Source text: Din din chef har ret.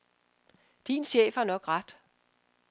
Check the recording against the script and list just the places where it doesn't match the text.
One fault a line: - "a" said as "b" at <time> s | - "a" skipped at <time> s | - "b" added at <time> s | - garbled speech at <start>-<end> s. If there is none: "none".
- "din" skipped at 1.0 s
- "nok" added at 1.4 s